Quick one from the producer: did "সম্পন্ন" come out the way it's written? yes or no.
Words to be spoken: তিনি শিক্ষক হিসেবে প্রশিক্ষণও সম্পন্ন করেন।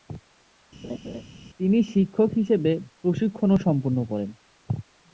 yes